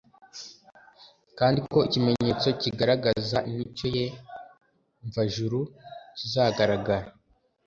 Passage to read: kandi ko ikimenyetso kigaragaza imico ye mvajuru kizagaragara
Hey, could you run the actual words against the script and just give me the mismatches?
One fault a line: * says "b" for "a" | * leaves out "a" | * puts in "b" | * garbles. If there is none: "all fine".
all fine